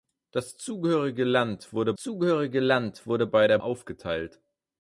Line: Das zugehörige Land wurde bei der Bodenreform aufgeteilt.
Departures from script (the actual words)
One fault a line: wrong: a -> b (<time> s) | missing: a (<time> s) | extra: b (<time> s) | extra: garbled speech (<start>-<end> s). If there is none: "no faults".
extra: zugehörige Land wurde (2.0 s)
missing: Bodenreform (3.6 s)